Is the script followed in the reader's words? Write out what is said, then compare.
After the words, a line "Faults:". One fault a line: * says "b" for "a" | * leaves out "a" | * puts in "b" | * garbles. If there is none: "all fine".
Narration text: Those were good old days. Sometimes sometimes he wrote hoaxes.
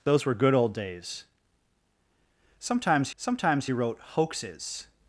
Those were good old days. Sometimes sometimes he wrote hoaxes.
Faults:
all fine